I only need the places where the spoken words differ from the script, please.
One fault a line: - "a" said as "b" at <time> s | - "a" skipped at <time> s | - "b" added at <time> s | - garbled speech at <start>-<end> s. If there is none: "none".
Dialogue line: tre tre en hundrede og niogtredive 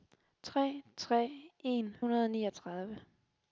none